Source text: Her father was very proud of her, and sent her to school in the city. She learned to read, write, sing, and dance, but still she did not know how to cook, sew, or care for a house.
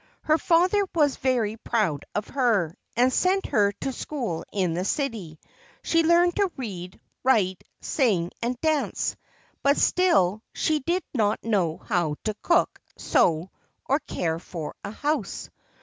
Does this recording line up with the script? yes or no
yes